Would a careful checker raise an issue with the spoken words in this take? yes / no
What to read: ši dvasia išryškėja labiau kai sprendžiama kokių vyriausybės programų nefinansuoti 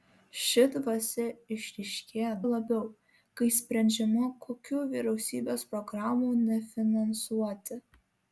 no